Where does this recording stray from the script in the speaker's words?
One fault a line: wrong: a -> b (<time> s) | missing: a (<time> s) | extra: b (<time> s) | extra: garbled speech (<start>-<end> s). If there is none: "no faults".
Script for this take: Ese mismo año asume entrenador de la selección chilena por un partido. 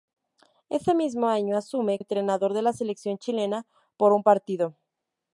no faults